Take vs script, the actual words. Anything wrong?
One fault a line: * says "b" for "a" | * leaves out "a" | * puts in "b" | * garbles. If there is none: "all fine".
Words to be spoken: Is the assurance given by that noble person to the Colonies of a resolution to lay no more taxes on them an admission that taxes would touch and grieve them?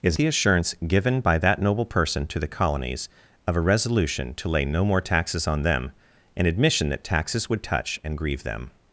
all fine